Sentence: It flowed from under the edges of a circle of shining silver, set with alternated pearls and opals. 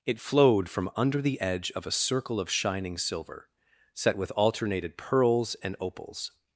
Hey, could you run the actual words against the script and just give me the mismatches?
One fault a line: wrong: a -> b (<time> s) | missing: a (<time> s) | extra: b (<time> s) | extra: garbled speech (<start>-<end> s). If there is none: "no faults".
wrong: edges -> edge (1.4 s)